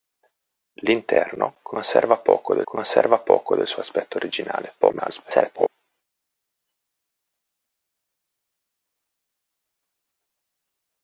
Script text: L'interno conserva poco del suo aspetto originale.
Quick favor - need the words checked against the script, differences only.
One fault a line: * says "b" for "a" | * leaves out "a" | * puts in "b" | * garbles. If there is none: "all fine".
* puts in "conserva poco del"
* garbles